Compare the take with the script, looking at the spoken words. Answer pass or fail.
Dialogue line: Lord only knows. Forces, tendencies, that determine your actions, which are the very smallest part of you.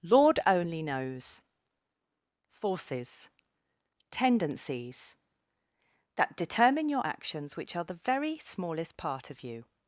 pass